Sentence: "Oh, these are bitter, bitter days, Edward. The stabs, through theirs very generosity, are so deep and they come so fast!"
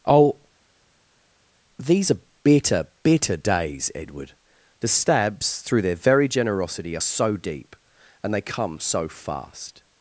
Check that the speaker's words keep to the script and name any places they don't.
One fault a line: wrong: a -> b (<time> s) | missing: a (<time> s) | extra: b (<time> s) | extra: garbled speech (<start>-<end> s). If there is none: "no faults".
wrong: theirs -> their (5.8 s)